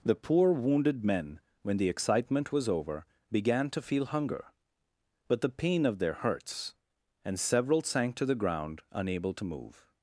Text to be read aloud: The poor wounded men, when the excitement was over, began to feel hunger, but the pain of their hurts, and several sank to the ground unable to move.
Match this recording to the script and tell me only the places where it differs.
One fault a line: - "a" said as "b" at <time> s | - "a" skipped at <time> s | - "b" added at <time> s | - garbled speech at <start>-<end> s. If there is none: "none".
none